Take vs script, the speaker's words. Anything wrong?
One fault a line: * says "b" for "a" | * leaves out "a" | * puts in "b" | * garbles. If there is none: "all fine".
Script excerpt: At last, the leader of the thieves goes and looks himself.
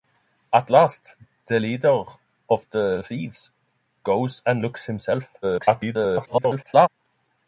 * garbles